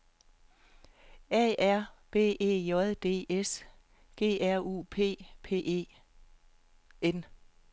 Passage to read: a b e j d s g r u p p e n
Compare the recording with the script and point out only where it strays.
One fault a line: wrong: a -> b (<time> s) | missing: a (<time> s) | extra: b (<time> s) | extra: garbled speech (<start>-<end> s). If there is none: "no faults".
extra: r (1.6 s)